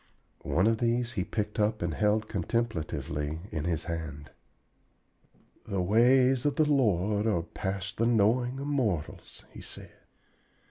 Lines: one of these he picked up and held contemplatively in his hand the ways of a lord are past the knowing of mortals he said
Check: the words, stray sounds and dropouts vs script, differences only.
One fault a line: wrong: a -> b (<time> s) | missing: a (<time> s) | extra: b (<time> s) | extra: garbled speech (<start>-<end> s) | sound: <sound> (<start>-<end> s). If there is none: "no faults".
wrong: a -> the (6.5 s)